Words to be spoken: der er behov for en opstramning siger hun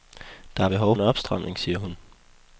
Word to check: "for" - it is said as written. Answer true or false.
false